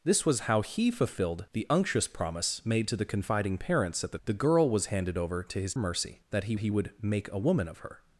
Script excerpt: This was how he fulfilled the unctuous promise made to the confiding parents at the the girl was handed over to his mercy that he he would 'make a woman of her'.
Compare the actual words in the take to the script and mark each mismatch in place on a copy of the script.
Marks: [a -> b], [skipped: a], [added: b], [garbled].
This was how he fulfilled the unctuous promise made to the confiding parents at the the girl was handed over to his mercy that he he would 'make a woman of her'.